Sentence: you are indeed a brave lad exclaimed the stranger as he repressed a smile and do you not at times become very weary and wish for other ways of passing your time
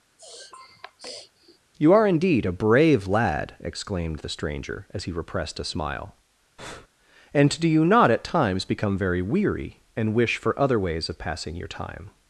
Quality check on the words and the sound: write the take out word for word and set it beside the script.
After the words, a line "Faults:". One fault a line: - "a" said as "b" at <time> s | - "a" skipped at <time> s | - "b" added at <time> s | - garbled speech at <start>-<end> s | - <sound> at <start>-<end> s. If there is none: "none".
you are indeed a brave lad exclaimed the stranger as he repressed a smile and do you not at times become very weary and wish for other ways of passing your time
Faults:
- sniff at 0.2-1.6 s
- breath at 6.6-6.9 s